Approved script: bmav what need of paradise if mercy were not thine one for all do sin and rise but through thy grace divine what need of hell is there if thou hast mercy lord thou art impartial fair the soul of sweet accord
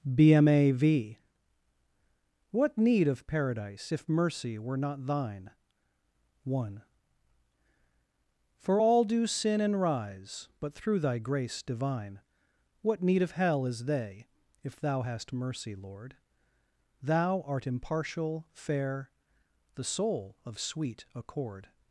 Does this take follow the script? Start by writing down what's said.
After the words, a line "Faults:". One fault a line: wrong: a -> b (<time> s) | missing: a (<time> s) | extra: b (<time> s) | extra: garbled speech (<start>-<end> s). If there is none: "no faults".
bmav what need of paradise if mercy were not thine one for all do sin and rise but through thy grace divine what need of hell is they if thou hast mercy lord thou art impartial fair the soul of sweet accord
Faults:
wrong: there -> they (13.9 s)